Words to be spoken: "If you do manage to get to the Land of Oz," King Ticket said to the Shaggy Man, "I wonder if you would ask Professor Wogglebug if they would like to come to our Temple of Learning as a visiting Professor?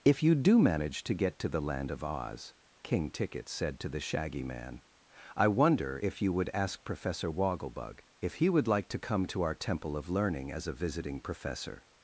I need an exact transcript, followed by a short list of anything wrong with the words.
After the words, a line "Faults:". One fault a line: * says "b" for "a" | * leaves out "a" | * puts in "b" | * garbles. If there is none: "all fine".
"If you do manage to get to the Land of Oz," King Ticket said to the Shaggy Man, "I wonder if you would ask Professor Wogglebug if he would like to come to our Temple of Learning as a visiting Professor?
Faults:
* says "he" for "they"